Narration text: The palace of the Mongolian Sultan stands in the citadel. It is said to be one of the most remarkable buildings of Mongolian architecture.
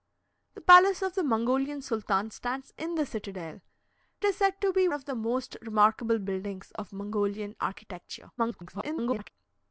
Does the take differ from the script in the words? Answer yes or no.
yes